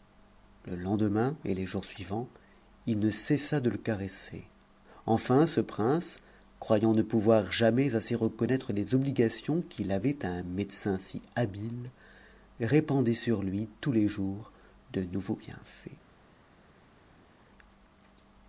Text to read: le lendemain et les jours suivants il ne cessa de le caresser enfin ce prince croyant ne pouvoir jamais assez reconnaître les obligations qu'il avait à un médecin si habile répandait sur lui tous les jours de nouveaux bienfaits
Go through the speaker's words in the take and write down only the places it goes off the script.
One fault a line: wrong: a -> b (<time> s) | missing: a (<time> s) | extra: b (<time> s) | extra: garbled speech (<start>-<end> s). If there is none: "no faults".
no faults